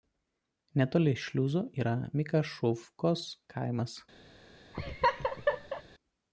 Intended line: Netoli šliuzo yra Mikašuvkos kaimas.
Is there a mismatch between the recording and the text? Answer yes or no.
no